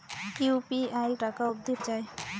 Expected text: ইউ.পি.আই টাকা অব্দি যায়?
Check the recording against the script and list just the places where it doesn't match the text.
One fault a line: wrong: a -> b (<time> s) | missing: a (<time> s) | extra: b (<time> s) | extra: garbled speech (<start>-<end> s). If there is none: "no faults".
no faults